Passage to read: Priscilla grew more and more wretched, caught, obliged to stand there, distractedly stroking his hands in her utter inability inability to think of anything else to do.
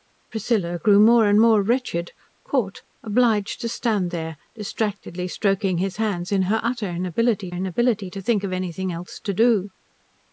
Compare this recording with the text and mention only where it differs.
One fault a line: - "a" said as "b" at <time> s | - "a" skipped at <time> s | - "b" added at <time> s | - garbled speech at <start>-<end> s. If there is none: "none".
none